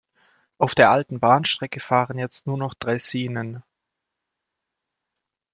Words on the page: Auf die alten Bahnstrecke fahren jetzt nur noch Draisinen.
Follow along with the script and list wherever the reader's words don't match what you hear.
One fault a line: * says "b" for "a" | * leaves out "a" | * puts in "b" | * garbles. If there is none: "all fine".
* says "der" for "die"